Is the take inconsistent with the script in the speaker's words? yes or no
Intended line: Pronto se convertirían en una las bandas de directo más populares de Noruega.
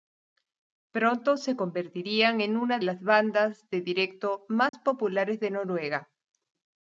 no